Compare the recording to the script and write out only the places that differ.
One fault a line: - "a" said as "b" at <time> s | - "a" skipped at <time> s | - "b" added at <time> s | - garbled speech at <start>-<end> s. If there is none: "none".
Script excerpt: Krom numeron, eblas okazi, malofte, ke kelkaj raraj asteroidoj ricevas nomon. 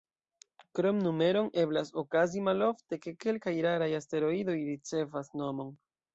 none